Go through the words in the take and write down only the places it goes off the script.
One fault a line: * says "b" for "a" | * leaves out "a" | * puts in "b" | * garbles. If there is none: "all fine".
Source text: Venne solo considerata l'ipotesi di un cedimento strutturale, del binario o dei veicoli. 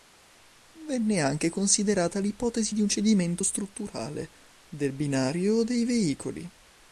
* says "anche" for "solo"